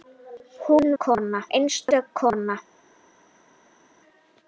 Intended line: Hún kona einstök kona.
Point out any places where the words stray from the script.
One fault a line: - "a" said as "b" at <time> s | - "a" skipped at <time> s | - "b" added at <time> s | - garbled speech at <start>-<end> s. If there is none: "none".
none